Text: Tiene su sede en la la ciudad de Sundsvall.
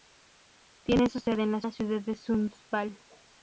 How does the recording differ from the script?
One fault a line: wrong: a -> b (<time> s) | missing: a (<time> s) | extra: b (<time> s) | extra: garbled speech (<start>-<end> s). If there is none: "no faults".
no faults